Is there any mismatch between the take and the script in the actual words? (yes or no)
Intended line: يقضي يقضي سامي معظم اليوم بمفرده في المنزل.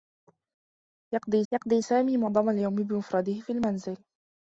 no